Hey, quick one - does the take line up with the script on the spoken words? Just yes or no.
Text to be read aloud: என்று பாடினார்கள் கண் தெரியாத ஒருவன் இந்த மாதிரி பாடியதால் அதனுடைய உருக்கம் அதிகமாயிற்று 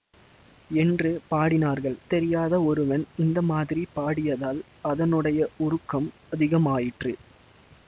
no